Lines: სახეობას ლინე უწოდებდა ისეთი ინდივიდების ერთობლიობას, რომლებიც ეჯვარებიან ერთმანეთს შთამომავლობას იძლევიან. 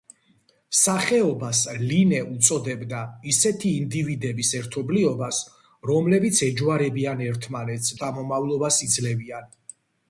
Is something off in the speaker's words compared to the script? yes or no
no